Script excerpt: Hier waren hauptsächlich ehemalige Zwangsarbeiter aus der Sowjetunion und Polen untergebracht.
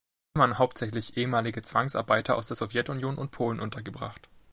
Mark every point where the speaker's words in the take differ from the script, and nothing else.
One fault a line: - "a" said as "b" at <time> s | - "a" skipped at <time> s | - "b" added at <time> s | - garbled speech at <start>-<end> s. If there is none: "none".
none